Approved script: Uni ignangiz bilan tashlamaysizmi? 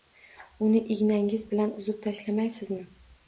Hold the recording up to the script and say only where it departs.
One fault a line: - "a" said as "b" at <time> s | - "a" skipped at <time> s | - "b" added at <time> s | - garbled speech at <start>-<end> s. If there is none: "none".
- "uzib" added at 1.8 s